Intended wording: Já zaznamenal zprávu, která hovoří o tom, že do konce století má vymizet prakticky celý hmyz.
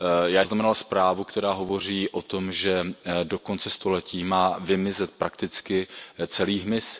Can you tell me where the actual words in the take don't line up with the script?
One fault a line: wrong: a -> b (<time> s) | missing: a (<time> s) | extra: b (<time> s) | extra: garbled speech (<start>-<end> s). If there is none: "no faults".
no faults